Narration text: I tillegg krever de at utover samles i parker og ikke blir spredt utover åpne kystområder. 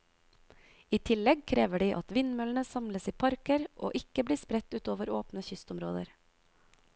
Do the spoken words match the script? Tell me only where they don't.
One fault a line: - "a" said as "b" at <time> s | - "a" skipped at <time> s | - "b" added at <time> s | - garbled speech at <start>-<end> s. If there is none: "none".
- "utover" said as "vindmøllene" at 2.2 s